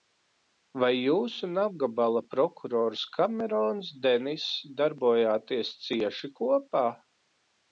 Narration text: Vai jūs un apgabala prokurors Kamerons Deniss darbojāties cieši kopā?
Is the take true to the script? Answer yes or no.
yes